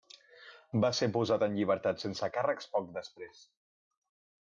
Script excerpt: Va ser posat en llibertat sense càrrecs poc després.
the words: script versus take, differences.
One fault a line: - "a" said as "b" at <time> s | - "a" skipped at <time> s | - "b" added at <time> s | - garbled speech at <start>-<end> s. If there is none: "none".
none